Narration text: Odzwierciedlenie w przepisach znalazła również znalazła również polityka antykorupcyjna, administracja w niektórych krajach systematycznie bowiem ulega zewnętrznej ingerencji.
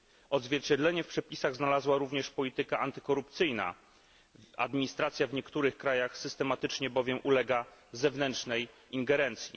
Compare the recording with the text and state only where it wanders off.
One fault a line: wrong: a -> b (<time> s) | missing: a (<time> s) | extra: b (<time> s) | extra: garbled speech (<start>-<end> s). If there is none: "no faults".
missing: znalazła również (2.3 s)